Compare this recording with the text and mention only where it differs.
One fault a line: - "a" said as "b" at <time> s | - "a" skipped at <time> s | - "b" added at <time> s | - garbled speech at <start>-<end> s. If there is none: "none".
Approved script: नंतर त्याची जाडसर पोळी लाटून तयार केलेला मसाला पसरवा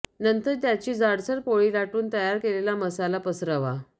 none